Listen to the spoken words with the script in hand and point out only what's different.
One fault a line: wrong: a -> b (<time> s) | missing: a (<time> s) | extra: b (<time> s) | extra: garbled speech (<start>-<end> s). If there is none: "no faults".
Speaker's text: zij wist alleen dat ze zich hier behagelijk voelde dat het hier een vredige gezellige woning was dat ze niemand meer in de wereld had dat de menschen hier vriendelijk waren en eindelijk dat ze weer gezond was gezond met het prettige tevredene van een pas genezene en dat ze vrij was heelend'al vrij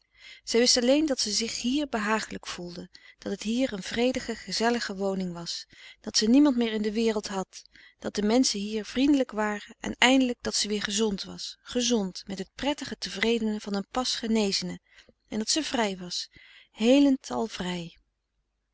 no faults